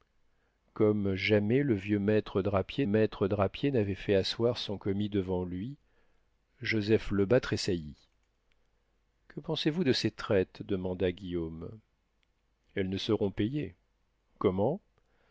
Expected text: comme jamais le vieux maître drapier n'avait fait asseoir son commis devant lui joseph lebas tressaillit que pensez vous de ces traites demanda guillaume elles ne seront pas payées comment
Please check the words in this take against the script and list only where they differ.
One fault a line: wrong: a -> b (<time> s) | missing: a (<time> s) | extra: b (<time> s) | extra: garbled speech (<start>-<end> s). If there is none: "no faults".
extra: maître drapier (2.9 s)
missing: pas (13.3 s)